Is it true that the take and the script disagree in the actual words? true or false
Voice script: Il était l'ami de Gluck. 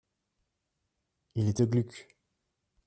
true